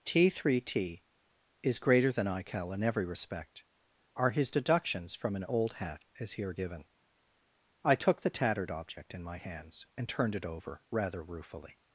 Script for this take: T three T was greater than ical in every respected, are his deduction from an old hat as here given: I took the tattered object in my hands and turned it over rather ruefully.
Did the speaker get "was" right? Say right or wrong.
wrong